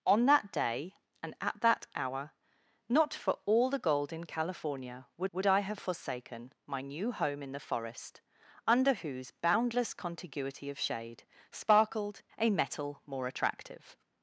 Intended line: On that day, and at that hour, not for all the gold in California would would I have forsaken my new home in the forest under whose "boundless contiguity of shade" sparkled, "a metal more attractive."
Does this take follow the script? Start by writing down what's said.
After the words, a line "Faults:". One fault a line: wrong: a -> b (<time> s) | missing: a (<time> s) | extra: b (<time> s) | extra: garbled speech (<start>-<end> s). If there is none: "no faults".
On that day, and at that hour, not for all the gold in California would would I have forsaken my new home in the forest under whose "boundless contiguity of shade" sparkled, "a metal more attractive."
Faults:
no faults